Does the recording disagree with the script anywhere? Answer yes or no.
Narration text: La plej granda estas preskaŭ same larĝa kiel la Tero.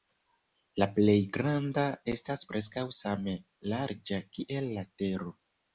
no